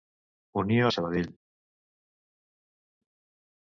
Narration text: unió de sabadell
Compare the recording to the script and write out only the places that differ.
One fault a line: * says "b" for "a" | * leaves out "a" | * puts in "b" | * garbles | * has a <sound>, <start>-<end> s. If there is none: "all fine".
all fine